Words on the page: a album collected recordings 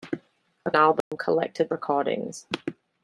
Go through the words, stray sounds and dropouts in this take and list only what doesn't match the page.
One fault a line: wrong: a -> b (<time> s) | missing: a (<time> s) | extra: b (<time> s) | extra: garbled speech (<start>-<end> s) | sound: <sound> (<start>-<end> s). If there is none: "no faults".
sound: dropout (1.0-1.1 s)